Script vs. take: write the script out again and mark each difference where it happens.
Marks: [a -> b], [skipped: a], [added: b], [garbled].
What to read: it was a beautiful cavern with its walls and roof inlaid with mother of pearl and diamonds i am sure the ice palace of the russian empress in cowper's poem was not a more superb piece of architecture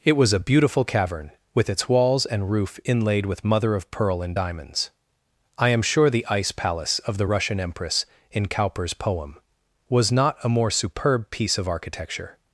it was a beautiful cavern with its walls and roof inlaid with mother of pearl and diamonds i am sure the ice palace of the russian empress in cowper's poem was not a more superb piece of architecture